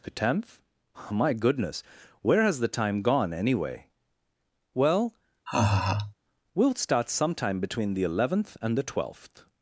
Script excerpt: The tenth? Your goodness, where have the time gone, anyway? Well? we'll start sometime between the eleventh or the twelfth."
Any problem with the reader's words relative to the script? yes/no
yes